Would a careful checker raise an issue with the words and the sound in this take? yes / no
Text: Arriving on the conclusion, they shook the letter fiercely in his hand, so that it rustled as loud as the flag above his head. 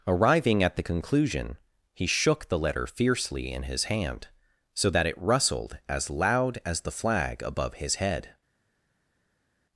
yes